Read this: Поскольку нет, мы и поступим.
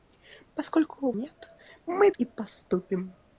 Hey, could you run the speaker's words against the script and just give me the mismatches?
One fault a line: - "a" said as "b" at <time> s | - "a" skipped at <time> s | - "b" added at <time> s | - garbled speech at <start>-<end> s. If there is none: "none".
none